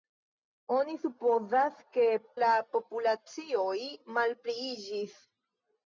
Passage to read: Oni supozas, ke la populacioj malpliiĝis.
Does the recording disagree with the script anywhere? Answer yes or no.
no